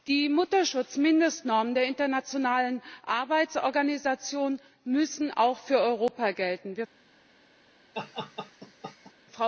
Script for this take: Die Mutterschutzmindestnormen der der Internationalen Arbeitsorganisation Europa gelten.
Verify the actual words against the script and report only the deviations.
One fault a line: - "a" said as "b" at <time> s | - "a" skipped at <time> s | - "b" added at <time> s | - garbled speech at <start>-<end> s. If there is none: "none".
- "der" skipped at 1.8 s
- "müssen auch für" added at 4.9 s